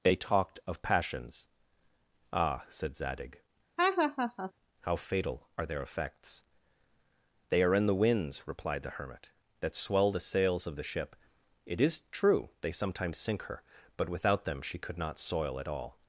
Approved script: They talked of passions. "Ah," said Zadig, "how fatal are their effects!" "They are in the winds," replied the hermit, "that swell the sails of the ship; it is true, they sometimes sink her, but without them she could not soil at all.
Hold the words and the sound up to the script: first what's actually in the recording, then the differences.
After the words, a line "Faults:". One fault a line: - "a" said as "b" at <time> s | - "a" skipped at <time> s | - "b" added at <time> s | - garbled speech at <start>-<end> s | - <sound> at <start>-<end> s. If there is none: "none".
They talked of passions. "Ah," said Zadig, "how fatal are their effects!" "They are in the winds," replied the hermit, "that swell the sails of the ship; it is true, they sometimes sink her, but without them she could not soil at all.
Faults:
- laugh at 3.8-4.5 s